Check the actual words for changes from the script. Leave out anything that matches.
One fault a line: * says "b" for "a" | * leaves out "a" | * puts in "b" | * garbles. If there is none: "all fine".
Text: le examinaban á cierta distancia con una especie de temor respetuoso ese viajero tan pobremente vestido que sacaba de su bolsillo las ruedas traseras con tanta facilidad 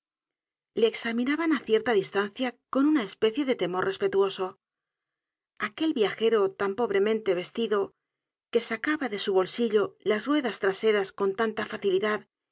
* says "aquel" for "ese"